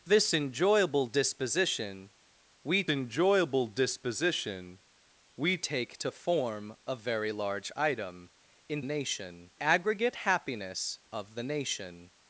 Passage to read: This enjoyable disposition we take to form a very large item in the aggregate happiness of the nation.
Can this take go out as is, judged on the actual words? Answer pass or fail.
fail